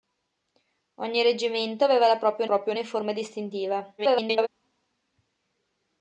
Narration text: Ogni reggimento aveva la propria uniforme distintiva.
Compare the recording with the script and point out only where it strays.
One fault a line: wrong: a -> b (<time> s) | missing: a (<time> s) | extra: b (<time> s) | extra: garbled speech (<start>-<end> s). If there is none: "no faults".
extra: propria (2.4 s)
extra: garbled speech (4.0-4.5 s)